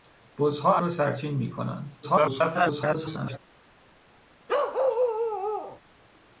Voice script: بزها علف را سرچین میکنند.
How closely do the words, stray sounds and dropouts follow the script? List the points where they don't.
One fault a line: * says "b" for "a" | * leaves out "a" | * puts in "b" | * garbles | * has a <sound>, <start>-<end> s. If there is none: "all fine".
* leaves out "علف"
* garbles
* has a bark, 4.5-5.8 s